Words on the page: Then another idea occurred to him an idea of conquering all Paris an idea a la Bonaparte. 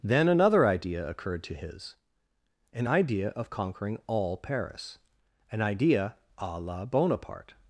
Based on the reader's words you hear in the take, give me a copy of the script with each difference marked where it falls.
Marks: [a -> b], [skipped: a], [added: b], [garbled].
Then another idea occurred to [him -> his] an idea of conquering all Paris an idea a la Bonaparte.